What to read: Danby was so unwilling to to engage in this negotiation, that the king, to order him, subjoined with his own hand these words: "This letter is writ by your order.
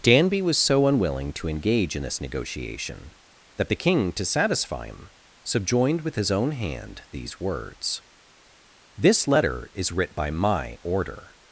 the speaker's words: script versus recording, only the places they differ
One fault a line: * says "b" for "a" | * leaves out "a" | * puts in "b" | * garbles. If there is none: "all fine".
* leaves out "to"
* says "satisfy" for "order"
* says "my" for "your"